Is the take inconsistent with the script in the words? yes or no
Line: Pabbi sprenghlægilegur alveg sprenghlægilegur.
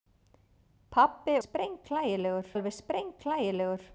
no